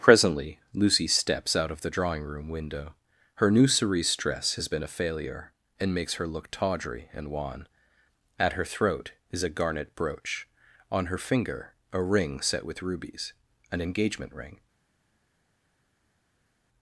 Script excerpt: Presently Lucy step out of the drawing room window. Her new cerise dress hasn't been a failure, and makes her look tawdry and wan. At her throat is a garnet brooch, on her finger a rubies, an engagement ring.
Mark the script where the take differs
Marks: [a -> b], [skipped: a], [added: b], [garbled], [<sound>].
Presently Lucy [step -> steps] out of the drawing room window. Her new cerise dress [hasn't -> has] been a failure, and makes her look tawdry and wan. At her throat is a garnet brooch, on her finger a [added: ring set with] rubies, an engagement ring.